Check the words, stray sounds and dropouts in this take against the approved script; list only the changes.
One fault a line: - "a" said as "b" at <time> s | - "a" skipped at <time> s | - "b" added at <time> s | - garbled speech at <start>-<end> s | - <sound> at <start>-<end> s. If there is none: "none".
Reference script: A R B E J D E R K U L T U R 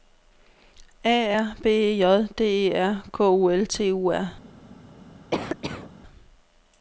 - cough at 5.3-5.9 s